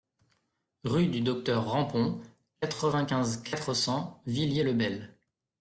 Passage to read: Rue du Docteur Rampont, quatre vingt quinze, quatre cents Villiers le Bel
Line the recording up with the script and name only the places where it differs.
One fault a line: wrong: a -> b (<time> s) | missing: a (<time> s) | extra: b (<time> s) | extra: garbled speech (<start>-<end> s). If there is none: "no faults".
no faults